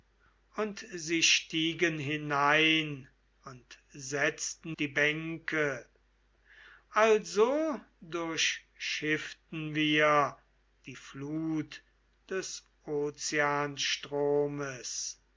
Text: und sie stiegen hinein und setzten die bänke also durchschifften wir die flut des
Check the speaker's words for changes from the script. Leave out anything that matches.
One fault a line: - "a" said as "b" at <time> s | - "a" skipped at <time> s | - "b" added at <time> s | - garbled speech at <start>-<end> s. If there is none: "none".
none